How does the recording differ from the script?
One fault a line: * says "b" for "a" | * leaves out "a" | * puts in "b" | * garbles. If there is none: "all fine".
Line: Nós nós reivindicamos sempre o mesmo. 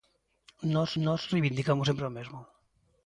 all fine